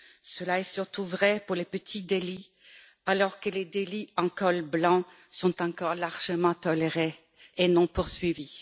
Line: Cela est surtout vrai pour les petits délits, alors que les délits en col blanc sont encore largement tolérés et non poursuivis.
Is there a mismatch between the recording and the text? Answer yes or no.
no